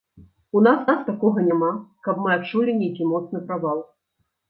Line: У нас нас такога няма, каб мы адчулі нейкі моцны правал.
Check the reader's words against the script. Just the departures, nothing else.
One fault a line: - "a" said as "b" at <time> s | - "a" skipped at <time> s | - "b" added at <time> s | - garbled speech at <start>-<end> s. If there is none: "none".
none